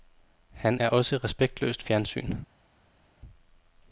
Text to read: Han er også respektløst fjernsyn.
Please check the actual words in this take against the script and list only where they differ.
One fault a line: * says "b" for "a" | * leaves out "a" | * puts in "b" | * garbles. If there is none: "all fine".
all fine